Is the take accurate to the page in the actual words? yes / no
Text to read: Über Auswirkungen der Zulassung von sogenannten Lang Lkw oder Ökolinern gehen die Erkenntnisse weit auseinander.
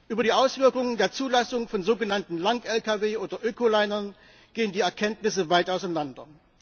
no